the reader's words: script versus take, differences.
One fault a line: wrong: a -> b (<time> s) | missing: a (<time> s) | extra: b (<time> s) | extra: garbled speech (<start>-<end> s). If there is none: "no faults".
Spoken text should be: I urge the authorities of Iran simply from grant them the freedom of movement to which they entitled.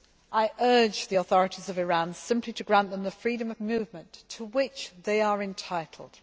wrong: from -> to (2.5 s)
extra: are (5.2 s)